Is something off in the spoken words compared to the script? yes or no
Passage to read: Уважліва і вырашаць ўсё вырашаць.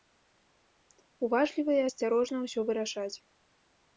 yes